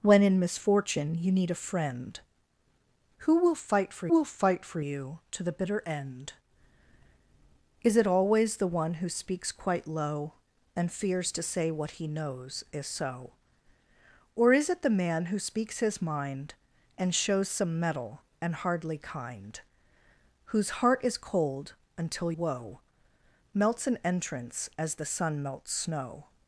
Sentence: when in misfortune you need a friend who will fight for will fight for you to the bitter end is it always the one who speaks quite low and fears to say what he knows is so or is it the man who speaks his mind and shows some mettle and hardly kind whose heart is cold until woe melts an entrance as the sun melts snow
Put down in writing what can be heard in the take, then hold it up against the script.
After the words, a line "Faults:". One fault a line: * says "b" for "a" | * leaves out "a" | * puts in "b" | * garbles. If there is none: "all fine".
when in misfortune you need a friend who will fight for will fight for you to the bitter end is it always the one who speaks quite low and fears to say what he knows is so or is it the man who speaks his mind and shows some mettle and hardly kind whose heart is cold until woe melts an entrance as the sun melts snow
Faults:
all fine